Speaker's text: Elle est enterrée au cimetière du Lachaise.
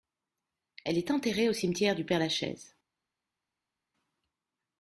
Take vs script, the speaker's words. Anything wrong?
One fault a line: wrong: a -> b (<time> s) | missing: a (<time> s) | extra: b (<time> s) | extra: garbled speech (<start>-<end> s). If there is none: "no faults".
extra: Père (2.0 s)